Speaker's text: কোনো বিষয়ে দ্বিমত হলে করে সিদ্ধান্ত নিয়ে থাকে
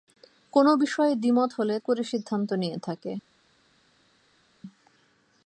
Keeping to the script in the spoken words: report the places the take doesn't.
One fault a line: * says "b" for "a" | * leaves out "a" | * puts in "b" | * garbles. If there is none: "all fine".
all fine